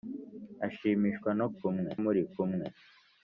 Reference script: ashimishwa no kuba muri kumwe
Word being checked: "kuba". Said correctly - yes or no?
no